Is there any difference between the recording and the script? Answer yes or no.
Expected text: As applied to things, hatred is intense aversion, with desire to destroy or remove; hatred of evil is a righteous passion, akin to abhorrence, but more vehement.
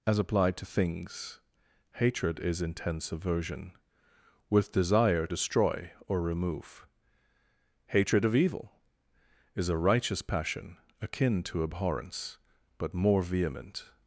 yes